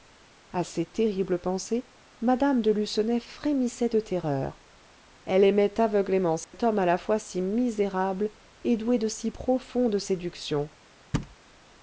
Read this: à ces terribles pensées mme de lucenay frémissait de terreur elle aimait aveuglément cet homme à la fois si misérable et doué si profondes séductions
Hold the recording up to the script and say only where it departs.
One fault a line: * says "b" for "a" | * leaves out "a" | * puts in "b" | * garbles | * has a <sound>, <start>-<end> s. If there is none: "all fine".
* has a dropout, 6.4-6.5 s
* puts in "de"
* has a thud, 11.1-11.4 s